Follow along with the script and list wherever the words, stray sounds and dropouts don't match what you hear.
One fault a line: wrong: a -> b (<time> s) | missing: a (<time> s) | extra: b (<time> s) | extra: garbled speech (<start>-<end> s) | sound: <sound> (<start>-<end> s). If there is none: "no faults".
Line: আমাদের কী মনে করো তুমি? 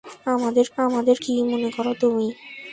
extra: আমাদের (0.8 s)